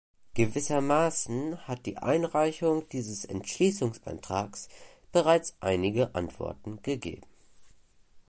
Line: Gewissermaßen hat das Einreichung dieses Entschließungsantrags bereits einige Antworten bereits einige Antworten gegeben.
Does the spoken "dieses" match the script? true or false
true